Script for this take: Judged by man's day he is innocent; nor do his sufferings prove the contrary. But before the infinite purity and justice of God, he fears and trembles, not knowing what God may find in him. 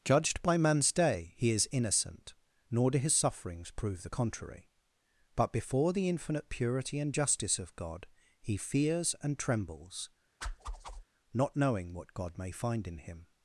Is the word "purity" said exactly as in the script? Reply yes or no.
yes